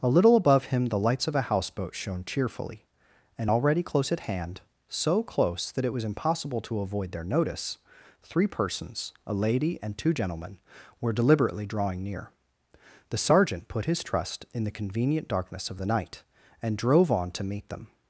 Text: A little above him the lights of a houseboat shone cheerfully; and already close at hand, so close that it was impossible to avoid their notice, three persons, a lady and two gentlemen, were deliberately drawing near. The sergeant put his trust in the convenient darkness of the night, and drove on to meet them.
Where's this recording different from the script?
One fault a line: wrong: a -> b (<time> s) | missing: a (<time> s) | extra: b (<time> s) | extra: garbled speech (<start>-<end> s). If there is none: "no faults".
no faults